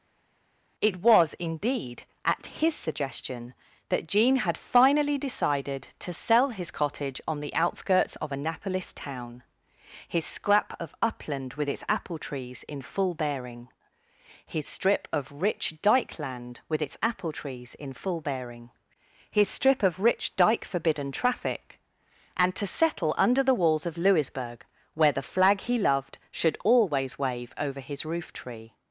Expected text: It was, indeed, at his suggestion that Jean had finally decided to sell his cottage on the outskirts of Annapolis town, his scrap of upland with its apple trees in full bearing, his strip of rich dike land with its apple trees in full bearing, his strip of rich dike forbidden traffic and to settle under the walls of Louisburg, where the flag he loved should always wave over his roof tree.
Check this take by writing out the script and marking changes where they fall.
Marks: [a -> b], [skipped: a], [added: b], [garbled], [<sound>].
It was, indeed, at his suggestion that Jean had finally decided to sell his cottage on the outskirts of Annapolis town, his scrap of upland with its apple trees in full bearing, his strip of rich dike land with its apple trees in full bearing, his strip of rich dike forbidden traffic and to settle under the walls of Louisburg, where the flag he loved should always wave over his roof tree.